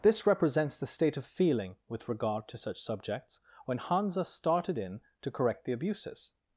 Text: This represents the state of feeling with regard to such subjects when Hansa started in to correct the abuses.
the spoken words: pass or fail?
pass